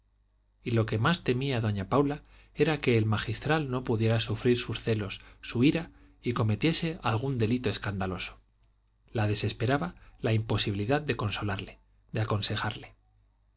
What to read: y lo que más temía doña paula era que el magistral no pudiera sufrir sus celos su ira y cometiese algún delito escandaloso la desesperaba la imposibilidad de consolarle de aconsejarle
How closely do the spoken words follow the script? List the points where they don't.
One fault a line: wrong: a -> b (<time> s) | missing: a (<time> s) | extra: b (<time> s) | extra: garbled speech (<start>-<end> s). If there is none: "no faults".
no faults